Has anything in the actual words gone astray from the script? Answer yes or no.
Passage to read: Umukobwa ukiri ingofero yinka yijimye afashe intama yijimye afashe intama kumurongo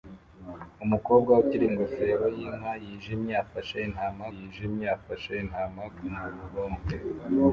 no